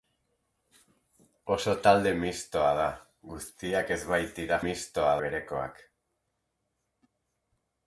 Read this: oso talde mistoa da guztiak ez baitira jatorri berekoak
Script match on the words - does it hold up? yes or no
no